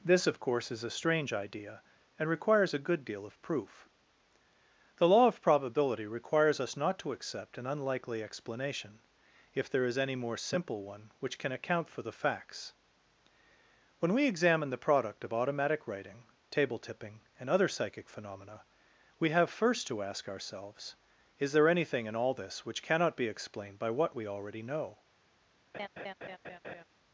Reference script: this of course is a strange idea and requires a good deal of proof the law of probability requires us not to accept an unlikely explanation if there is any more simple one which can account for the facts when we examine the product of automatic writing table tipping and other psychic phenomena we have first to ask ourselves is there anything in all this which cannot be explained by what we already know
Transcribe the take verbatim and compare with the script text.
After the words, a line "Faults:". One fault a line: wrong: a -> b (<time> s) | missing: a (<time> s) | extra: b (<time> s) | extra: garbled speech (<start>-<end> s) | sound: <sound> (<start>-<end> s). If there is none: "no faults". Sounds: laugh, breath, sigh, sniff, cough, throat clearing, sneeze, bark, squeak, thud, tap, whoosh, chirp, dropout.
this of course is a strange idea and requires a good deal of proof the law of probability requires us not to accept an unlikely explanation if there is any more simple one which can account for the facts when we examine the product of automatic writing table tipping and other psychic phenomena we have first to ask ourselves is there anything in all this which cannot be explained by what we already know
Faults:
sound: laugh (25.7-26.8 s)